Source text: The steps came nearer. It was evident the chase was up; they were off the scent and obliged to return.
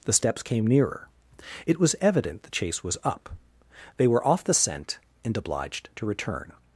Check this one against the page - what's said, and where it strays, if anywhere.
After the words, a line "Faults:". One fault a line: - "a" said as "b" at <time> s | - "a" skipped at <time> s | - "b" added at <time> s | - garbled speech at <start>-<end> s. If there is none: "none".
The steps came nearer. It was evident the chase was up; they were off the scent and obliged to return.
Faults:
none